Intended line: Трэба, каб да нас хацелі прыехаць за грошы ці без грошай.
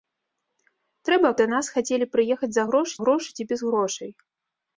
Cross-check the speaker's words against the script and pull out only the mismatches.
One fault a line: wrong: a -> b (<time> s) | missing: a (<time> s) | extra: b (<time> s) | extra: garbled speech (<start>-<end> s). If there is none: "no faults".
missing: каб (1.3 s)
extra: грошы (3.0 s)